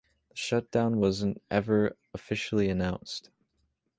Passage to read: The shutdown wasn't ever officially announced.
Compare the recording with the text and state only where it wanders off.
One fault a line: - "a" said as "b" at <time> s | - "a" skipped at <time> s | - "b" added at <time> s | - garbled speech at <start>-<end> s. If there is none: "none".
none